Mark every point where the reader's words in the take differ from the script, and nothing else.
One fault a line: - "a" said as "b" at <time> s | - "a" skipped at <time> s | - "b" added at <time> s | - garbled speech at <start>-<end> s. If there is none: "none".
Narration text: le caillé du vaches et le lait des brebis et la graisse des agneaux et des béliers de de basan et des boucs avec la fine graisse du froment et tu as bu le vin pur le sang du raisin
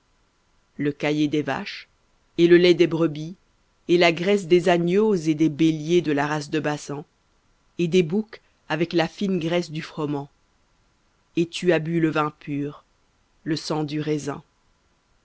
- "du" said as "des" at 1.3 s
- "la race" added at 6.1 s